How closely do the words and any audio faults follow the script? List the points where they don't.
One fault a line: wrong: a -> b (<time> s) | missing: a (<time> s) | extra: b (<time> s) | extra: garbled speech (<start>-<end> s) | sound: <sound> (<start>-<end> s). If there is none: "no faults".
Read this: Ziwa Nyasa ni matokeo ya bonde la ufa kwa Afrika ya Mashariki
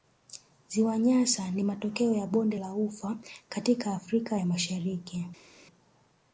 wrong: kwa -> katika (3.5 s)